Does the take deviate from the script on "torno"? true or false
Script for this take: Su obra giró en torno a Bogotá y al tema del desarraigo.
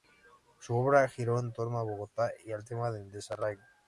false